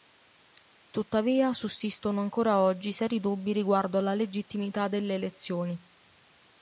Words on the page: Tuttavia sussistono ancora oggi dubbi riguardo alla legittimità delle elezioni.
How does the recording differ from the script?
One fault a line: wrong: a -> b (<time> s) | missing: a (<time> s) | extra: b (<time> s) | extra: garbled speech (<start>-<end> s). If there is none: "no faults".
extra: seri (2.9 s)